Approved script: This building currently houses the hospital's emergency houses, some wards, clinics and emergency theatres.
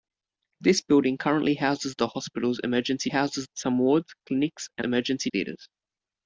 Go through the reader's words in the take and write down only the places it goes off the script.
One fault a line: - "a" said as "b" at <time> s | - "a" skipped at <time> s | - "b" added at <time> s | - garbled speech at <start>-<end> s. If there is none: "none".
none